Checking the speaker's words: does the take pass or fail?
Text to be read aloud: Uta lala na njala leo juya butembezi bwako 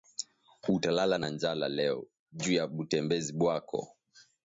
pass